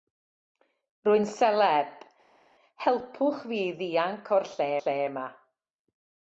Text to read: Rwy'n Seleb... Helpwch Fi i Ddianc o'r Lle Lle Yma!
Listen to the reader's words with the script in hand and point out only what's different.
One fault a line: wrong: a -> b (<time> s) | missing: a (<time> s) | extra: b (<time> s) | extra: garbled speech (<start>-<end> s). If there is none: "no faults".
no faults